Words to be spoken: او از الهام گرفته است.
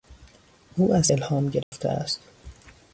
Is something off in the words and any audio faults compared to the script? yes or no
yes